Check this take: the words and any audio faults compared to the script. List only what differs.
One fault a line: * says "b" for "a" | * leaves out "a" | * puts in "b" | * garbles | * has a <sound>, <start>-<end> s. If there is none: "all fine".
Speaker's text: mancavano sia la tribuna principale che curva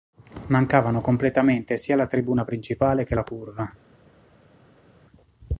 * puts in "completamente"
* puts in "la"